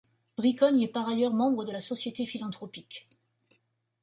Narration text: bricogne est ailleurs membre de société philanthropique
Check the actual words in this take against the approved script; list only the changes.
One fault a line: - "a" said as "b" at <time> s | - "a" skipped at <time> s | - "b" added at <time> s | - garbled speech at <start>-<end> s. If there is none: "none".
- "par" added at 0.9 s
- "la" added at 1.7 s